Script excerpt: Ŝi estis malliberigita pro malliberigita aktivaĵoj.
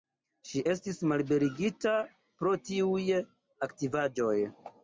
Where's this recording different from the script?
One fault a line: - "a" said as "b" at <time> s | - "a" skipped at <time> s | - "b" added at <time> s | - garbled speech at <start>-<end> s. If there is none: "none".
- "malliberigita" said as "tiuj" at 2.7 s